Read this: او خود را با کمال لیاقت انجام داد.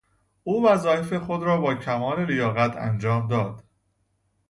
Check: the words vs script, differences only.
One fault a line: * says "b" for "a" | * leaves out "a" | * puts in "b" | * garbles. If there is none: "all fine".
* puts in "وظایف"